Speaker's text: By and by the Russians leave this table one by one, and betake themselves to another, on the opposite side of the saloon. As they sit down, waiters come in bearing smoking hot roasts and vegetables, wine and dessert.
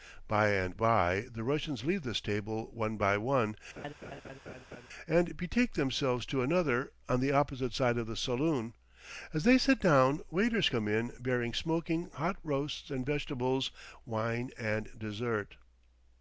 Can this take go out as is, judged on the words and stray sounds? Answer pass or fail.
fail